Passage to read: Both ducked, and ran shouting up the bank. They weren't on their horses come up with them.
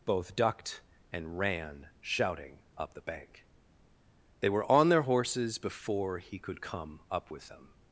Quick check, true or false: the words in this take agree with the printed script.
false